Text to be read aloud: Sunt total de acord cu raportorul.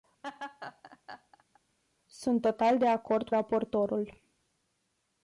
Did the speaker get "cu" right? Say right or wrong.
wrong